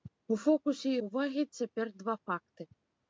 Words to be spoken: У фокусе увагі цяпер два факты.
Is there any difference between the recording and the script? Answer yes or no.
no